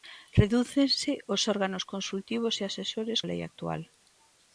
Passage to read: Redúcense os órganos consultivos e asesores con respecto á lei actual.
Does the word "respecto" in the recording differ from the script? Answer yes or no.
yes